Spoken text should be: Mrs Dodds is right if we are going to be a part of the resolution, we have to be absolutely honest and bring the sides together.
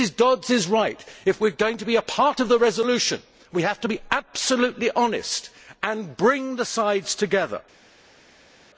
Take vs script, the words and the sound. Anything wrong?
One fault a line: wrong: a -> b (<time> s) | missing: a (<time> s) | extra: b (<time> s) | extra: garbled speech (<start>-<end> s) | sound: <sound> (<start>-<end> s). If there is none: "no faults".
no faults